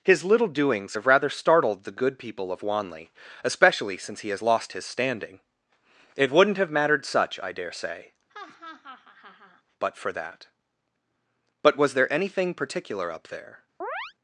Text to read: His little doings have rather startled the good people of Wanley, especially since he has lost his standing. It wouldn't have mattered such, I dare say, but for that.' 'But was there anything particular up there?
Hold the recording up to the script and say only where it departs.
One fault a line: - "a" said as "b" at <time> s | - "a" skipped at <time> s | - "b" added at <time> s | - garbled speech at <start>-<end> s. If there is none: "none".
none